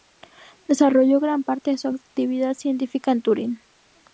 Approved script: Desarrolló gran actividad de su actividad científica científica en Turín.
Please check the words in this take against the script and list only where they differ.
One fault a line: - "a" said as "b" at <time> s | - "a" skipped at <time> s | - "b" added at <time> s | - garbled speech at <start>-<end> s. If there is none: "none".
- "actividad" said as "parte" at 1.4 s
- "científica" skipped at 3.1 s